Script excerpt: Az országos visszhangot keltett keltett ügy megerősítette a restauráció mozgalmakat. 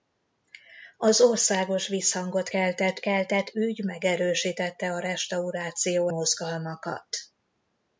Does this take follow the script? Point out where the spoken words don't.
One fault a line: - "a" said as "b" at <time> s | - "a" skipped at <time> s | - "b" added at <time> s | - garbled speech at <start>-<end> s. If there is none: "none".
none